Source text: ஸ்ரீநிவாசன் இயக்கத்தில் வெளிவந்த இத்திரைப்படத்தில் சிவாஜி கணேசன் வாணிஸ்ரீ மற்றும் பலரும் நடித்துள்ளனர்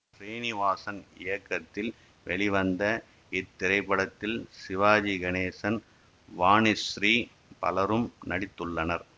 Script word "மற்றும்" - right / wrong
wrong